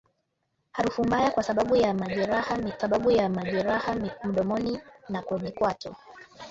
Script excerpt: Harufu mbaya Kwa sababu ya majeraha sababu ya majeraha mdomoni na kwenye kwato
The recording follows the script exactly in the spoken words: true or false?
true